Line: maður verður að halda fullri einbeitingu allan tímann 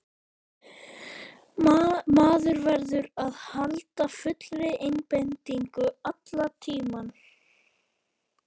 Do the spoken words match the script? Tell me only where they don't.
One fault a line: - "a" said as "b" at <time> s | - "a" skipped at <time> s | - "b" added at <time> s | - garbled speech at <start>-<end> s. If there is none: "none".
none